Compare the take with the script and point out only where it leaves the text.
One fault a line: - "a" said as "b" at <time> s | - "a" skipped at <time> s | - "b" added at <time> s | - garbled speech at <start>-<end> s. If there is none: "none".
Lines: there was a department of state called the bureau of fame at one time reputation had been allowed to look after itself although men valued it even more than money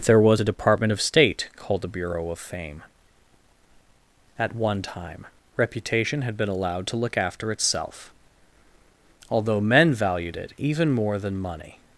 none